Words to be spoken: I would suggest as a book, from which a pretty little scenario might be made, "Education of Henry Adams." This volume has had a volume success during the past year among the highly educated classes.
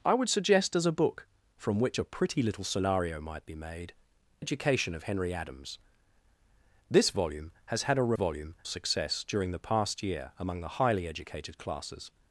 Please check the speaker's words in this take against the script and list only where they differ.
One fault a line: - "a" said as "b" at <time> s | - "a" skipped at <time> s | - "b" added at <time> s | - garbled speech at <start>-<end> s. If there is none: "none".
none